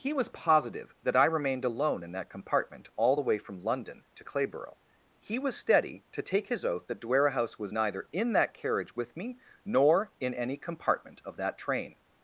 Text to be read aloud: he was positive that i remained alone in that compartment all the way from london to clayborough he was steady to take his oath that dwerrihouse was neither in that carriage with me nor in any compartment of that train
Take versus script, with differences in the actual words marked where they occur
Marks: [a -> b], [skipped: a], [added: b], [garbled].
he was positive that i remained alone in that compartment all the way from london to clayborough he was steady to take his oath that dwerrihouse was neither in that carriage with me nor in any compartment of that train